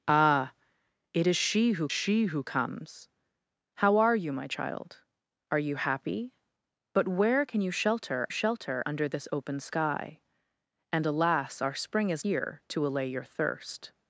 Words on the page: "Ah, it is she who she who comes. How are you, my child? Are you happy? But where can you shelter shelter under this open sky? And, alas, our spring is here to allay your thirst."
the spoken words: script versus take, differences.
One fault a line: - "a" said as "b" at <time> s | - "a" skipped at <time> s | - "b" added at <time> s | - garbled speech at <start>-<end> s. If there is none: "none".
none